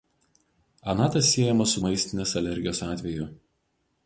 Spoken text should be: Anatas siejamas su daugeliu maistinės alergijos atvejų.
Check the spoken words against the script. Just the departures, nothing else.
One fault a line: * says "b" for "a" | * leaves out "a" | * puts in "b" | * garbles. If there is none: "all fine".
* leaves out "daugeliu"